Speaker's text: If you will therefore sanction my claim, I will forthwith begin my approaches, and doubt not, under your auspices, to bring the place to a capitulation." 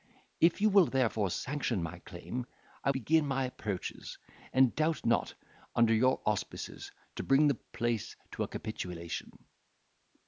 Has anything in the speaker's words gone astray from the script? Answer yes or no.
yes